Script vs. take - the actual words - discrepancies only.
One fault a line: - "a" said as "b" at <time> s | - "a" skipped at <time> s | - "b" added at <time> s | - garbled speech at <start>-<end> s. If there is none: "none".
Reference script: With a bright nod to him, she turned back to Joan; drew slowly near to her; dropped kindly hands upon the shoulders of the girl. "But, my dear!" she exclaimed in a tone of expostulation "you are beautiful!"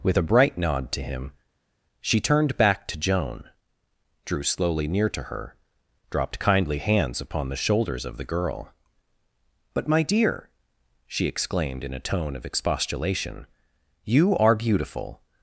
none